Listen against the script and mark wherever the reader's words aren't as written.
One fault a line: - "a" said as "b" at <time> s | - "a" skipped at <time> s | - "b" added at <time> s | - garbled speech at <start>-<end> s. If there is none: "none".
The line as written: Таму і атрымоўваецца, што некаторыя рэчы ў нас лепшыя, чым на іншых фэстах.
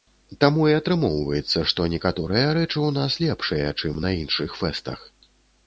none